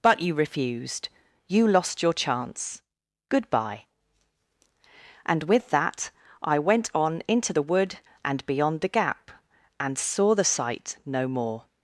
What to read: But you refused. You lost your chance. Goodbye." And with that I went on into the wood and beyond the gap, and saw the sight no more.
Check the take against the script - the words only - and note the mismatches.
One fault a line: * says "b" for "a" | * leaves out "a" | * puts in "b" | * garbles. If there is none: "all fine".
all fine